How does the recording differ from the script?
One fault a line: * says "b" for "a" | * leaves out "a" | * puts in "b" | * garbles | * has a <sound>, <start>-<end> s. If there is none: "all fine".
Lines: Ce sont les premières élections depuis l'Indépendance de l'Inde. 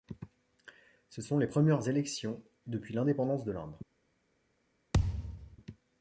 * has a thud, 4.9-5.6 s